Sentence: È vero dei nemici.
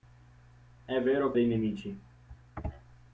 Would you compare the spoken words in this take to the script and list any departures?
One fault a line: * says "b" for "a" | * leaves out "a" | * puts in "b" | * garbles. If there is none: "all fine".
all fine